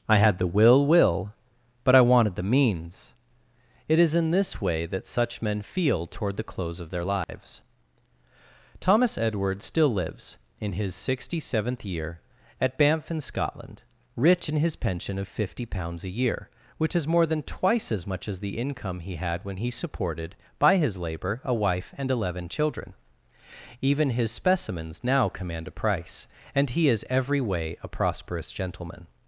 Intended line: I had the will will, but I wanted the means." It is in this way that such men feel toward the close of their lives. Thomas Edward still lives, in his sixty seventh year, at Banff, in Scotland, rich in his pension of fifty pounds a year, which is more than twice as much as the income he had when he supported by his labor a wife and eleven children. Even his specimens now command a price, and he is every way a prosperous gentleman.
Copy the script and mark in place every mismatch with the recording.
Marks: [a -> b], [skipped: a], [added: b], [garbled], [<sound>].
I had the will will, but I wanted the means." It is in this way that such men feel toward the close of their lives. [dropout] Thomas Edward still lives, in his sixty seventh year, at Banff, in Scotland, rich in his pension of fifty pounds a year, which is more than twice as much as the income he had when he supported by his labor a wife and eleven children. Even his specimens now command a price, and he is every way a prosperous gentleman.